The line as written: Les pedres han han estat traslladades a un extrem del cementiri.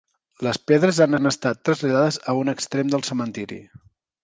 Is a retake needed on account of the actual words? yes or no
no